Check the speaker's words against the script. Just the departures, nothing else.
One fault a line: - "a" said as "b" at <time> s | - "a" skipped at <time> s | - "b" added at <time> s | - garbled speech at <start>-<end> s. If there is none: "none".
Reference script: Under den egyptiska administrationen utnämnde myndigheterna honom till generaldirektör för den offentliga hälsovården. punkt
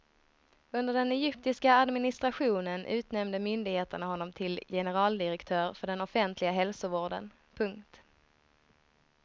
none